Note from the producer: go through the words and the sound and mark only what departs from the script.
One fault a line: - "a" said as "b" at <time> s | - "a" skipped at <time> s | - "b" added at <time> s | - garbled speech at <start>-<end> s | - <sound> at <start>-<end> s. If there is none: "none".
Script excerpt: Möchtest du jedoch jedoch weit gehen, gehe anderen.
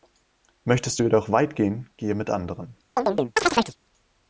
- "jedoch" skipped at 1.3 s
- "mit" added at 2.1 s
- chirp at 3.0-3.8 s